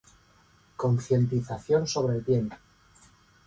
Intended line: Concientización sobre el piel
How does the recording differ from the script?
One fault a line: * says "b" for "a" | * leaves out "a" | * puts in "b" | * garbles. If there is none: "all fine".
all fine